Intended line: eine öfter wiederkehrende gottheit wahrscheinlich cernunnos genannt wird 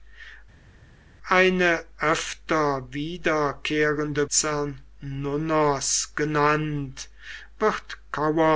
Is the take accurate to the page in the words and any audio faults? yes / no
no